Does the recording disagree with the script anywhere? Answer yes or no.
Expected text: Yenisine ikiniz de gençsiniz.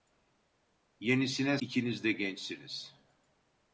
no